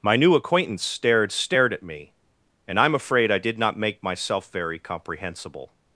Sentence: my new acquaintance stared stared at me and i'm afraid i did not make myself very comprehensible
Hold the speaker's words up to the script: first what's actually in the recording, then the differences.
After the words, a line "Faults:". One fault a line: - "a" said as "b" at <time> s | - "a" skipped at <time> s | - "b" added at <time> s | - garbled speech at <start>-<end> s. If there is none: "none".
my new acquaintance stared stared at me and i'm afraid i did not make myself very comprehensible
Faults:
none